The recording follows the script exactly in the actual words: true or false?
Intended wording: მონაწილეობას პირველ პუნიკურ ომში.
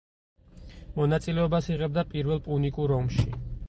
false